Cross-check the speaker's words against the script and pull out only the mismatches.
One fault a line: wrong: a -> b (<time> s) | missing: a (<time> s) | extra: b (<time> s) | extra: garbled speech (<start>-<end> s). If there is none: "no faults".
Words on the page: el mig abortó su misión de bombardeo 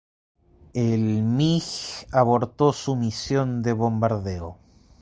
no faults